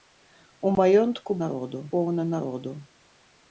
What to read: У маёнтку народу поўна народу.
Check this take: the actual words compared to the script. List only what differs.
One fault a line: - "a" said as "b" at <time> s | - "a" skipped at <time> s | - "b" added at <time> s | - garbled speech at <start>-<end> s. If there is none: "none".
none